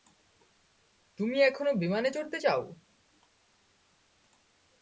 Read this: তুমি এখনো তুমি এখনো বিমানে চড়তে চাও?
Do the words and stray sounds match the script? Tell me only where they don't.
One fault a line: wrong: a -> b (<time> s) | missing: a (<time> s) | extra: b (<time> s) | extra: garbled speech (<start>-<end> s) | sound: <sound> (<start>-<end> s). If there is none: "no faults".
missing: তুমি এখনো (1.7 s)